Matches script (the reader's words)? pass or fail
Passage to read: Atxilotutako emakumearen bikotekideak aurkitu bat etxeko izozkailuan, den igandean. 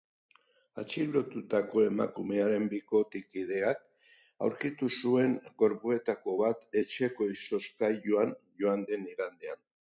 fail